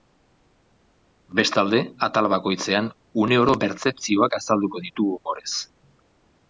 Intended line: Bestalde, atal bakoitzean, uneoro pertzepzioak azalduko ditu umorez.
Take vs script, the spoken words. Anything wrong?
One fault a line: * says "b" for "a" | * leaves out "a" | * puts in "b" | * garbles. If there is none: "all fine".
all fine